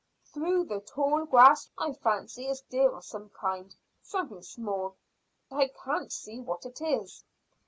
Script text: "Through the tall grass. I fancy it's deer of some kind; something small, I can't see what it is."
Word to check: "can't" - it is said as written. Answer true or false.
true